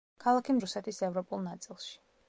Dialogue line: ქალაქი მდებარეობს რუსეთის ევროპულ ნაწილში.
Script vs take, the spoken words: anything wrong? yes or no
yes